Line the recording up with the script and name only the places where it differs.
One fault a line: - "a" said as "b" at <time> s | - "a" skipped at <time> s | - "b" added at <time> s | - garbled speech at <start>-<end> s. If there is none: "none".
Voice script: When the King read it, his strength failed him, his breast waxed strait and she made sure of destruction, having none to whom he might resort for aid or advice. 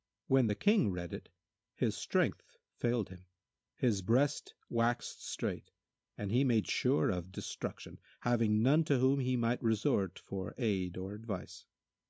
- "she" said as "he" at 6.3 s